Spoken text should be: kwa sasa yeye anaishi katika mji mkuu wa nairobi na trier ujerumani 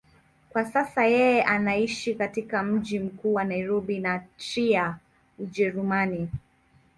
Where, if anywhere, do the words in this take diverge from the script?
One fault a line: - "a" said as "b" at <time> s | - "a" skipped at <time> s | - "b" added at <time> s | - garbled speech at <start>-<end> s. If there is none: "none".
none